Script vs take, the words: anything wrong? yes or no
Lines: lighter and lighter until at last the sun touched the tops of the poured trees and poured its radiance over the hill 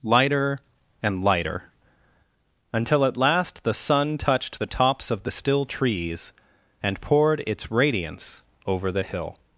yes